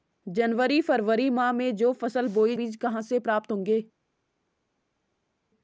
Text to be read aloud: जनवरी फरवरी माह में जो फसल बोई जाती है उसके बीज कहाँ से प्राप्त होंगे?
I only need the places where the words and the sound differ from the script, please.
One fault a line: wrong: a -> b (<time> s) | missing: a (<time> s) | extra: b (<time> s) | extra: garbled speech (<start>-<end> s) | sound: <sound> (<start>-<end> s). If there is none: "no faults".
missing: जाती है उसके (2.5 s)